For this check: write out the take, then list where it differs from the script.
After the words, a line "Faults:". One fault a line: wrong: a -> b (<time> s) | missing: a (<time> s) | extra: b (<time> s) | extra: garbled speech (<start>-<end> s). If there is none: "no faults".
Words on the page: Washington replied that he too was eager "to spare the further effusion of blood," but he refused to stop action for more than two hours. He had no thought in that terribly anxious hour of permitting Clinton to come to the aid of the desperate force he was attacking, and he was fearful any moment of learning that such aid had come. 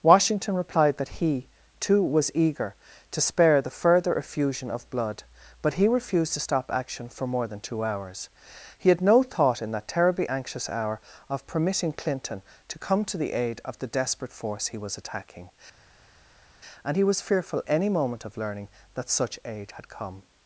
Washington replied that he too was eager "to spare the further effusion of blood," but he refused to stop action for more than two hours. He had no thought in that terribly anxious hour of permitting Clinton to come to the aid of the desperate force he was attacking, and he was fearful any moment of learning that such aid had come.
Faults:
no faults